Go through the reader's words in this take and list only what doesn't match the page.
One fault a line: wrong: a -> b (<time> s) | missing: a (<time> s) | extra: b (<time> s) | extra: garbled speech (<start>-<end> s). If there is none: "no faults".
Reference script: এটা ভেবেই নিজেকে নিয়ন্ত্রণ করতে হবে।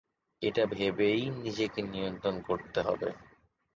no faults